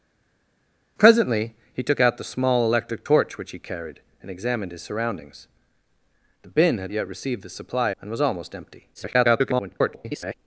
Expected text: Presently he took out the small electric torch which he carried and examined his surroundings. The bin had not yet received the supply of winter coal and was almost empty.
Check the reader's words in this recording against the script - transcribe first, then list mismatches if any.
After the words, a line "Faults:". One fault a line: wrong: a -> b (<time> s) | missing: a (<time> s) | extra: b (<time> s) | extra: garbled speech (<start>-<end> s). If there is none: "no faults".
Presently he took out the small electric torch which he carried and examined his surroundings. The bin had yet received the supply and was almost empty. [garbled]
Faults:
missing: not (6.9 s)
missing: of winter coal (7.9 s)
extra: garbled speech (8.9-10.3 s)